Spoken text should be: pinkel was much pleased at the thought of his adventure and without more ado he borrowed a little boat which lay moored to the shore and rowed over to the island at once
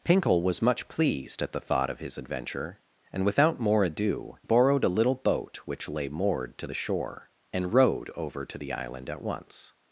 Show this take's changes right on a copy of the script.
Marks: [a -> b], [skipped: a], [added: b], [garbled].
pinkel was much pleased at the thought of his adventure and without more ado [skipped: he] borrowed a little boat which lay moored to the shore and rowed over to the island at once